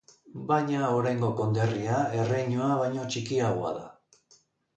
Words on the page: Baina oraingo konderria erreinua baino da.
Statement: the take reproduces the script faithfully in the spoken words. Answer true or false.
false